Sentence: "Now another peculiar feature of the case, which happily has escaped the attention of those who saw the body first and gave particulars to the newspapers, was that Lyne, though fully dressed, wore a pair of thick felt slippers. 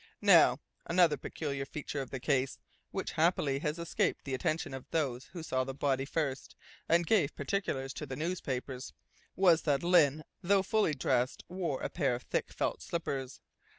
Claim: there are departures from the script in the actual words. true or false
false